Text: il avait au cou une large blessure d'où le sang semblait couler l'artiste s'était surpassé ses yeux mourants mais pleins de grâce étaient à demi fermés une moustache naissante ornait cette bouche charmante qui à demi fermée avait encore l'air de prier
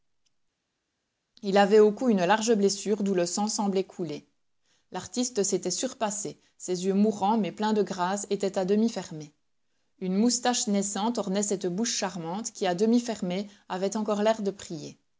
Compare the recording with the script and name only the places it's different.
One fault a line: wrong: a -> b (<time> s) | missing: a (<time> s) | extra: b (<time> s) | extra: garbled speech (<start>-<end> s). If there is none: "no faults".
no faults